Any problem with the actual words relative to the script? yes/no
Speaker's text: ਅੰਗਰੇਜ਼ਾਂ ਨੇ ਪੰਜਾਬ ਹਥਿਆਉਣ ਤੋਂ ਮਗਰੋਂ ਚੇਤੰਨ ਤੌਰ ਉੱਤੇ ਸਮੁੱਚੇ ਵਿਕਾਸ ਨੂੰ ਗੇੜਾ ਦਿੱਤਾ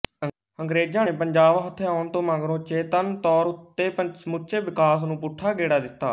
yes